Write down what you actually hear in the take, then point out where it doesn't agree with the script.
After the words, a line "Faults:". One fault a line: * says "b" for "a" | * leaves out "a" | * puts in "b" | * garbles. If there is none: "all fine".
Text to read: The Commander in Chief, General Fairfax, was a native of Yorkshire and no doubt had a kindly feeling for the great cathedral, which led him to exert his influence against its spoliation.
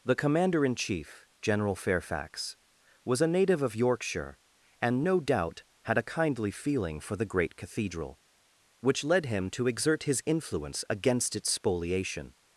The Commander in Chief, General Fairfax, was a native of Yorkshire and no doubt had a kindly feeling for the great cathedral, which led him to exert his influence against its spoliation.
Faults:
all fine